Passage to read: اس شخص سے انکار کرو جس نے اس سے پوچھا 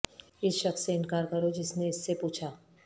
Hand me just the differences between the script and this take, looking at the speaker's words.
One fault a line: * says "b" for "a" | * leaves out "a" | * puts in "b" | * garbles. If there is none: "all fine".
all fine